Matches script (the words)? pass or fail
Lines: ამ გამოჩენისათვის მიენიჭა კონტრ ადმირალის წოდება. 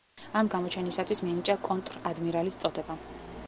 pass